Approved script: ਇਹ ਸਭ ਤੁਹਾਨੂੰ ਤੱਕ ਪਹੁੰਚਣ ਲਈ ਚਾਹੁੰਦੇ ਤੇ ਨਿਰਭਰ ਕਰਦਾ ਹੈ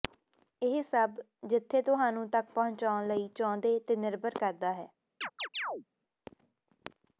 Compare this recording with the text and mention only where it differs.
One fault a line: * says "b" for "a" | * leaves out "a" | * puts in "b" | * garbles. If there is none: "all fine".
* puts in "ਜਿੱਥੇ"